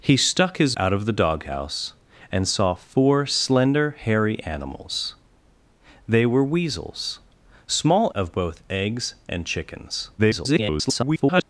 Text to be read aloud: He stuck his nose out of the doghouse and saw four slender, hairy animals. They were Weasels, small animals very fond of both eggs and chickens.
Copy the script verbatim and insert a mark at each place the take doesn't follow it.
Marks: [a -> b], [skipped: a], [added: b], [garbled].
He stuck his [skipped: nose] out of the doghouse and saw four slender, hairy animals. They were Weasels, small [skipped: animals very fond] of both eggs and chickens. [garbled]